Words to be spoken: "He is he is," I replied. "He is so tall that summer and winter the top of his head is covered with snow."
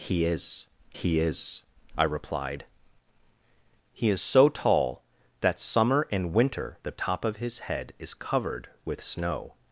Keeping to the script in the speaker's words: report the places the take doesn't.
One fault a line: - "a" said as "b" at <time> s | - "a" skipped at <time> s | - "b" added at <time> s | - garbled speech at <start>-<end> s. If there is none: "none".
none